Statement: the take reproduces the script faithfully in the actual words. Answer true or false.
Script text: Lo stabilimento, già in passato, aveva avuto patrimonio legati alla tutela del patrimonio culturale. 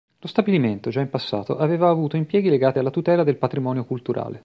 false